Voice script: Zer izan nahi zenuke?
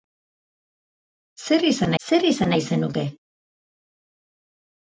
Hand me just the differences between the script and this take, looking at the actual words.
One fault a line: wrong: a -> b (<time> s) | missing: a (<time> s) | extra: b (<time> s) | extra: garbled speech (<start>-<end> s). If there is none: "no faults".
extra: zer izan (2.0 s)